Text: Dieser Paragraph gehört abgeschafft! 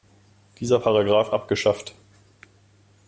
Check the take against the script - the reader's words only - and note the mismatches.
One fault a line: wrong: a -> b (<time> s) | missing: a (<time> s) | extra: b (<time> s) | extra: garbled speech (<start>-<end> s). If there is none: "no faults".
missing: gehört (1.3 s)